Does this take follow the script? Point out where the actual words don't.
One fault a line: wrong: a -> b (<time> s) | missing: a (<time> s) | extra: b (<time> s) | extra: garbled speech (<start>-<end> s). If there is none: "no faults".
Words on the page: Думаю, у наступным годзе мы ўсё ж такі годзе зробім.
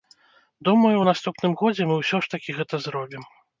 wrong: годзе -> гэта (2.6 s)